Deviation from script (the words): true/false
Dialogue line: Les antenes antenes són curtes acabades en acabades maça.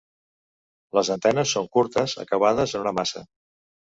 true